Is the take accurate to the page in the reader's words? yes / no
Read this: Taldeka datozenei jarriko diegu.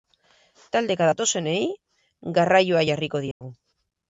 no